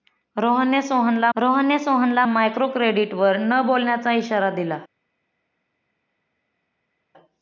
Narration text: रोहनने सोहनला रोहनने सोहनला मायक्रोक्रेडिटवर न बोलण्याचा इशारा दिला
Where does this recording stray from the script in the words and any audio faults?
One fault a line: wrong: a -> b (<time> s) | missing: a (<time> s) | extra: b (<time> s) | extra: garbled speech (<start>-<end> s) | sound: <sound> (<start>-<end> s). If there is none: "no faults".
no faults